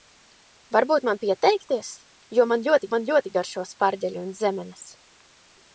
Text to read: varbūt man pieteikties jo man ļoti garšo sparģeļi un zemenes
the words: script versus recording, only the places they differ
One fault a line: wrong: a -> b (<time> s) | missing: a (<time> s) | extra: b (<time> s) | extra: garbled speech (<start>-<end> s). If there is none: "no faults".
extra: man ļoti (2.9 s)